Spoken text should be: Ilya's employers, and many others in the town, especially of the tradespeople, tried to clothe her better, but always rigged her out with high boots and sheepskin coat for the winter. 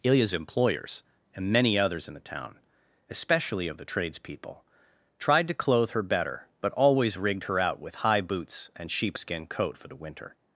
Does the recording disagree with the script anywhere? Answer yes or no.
no